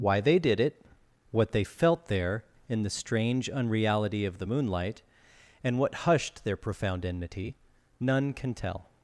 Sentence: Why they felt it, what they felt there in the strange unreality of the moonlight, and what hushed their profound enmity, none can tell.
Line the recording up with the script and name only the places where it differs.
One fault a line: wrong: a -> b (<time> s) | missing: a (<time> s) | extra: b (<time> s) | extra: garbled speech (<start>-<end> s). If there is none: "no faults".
wrong: felt -> did (0.4 s)